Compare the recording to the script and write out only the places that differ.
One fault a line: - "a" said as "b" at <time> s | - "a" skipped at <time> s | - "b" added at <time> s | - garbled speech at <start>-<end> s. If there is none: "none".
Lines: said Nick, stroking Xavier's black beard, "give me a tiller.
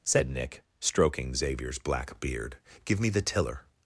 - "a" said as "the" at 3.1 s